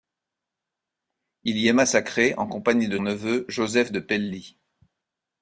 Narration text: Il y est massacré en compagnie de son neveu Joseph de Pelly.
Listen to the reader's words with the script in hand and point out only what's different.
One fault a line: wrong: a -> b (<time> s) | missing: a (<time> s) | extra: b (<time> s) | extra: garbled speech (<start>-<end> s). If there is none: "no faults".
missing: son (3.0 s)